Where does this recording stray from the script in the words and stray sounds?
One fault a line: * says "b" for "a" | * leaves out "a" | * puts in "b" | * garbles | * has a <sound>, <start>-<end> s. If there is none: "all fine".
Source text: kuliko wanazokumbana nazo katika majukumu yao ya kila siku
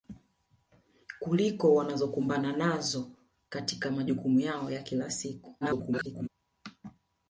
* garbles